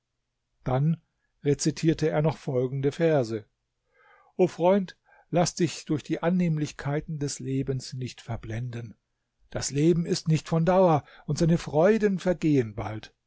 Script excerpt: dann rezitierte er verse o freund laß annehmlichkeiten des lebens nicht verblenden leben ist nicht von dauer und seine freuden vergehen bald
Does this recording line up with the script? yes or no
no